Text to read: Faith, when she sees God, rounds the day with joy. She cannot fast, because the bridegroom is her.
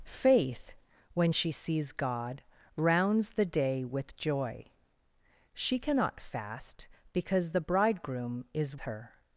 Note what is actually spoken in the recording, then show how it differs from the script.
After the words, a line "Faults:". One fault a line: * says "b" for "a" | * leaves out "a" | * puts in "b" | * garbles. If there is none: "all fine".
Faith, when she sees God, rounds the day with joy. She cannot fast, because the bridegroom is her.
Faults:
all fine